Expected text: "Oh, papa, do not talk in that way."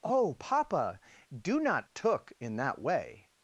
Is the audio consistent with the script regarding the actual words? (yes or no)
no